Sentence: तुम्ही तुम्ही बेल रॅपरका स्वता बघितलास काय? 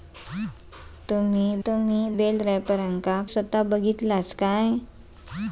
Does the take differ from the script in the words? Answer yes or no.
no